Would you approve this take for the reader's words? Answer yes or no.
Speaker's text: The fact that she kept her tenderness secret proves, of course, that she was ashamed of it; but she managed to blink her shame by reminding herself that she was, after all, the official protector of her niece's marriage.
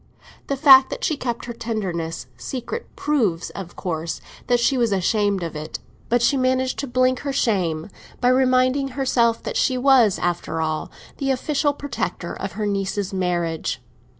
yes